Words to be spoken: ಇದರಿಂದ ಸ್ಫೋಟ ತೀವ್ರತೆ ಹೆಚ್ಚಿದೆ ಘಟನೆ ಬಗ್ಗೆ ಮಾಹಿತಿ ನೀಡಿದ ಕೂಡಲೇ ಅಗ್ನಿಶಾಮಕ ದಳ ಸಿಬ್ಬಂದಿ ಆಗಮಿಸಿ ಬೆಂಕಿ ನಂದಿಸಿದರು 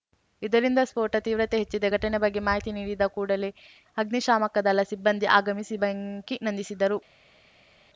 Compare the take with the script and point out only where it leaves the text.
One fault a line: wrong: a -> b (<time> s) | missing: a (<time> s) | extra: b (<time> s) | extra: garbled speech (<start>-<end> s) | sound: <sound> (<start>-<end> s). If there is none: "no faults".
no faults